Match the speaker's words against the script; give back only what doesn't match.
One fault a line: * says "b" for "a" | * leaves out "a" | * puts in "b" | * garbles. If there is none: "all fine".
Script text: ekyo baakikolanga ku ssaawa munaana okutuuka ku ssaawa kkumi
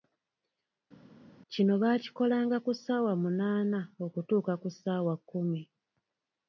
* says "kino" for "ekyo"